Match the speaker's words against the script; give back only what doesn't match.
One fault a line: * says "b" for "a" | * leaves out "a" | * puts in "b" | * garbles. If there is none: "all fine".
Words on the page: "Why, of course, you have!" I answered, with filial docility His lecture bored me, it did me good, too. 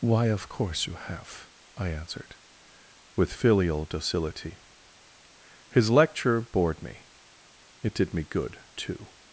all fine